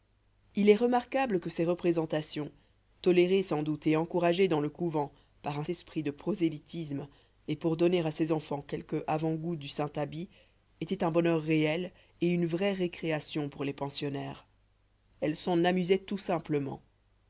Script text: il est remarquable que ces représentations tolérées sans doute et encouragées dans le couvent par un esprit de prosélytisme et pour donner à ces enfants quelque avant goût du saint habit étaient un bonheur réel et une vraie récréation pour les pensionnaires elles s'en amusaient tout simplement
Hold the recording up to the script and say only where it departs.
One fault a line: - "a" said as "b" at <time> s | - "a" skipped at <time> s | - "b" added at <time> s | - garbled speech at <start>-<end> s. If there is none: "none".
none